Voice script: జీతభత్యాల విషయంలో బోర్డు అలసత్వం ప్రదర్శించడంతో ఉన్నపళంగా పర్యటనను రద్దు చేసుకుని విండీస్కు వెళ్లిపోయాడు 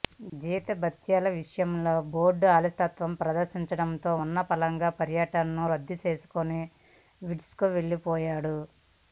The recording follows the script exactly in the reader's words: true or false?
true